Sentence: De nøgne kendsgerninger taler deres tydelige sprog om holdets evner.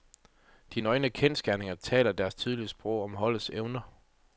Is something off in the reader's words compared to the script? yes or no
no